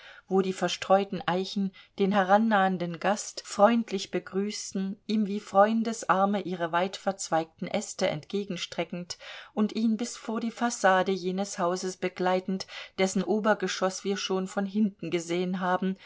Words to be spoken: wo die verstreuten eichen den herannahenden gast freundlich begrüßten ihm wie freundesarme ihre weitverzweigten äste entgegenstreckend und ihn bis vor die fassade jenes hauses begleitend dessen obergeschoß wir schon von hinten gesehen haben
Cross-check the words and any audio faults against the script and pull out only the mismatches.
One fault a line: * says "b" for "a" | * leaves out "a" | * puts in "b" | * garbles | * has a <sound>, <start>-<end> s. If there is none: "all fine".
all fine